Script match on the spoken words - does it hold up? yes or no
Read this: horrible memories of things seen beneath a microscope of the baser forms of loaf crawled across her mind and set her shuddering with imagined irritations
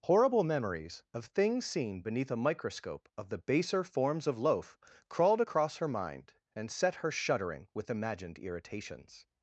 yes